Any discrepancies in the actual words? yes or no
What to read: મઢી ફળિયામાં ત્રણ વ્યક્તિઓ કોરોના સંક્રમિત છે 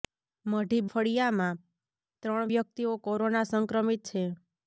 no